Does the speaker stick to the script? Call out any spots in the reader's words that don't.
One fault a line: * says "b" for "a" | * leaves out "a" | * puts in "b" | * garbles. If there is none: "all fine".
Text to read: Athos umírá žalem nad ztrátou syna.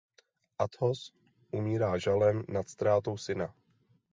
all fine